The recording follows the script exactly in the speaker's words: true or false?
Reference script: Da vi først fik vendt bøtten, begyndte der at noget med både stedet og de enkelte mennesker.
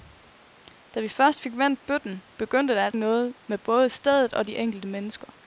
true